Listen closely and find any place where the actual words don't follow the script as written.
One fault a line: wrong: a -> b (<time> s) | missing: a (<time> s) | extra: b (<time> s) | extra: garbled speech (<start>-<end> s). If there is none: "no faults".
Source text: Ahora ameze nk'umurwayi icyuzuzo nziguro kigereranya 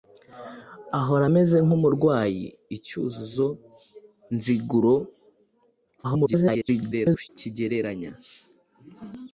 extra: garbled speech (6.0-7.3 s)